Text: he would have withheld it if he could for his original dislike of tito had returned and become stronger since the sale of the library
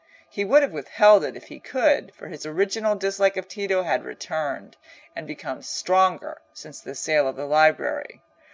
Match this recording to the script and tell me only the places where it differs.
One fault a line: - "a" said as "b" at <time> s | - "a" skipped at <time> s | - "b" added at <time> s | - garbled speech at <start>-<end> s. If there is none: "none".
none